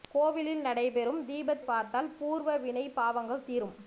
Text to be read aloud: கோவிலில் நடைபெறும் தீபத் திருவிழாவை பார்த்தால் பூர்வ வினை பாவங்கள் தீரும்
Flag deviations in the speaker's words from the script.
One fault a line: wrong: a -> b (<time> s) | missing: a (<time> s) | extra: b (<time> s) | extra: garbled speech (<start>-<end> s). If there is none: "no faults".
missing: திருவிழாவை (1.6 s)